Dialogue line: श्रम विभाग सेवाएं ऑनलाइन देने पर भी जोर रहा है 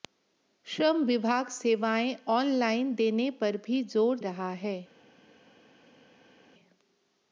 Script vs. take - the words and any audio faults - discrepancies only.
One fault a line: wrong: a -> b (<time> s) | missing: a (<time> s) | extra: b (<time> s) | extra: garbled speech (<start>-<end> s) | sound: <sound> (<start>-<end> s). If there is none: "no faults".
no faults